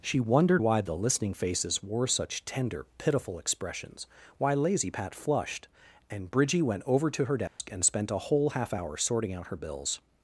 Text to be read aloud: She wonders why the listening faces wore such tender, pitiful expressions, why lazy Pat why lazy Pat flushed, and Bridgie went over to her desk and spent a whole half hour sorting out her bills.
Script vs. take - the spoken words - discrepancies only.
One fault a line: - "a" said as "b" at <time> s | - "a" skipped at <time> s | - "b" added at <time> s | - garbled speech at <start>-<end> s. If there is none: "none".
- "wonders" said as "wondered" at 0.2 s
- "why lazy Pat" skipped at 5.1 s